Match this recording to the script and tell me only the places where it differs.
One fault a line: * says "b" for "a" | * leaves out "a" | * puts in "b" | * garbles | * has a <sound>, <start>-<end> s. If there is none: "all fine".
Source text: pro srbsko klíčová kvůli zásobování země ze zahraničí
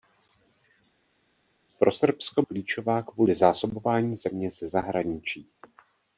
all fine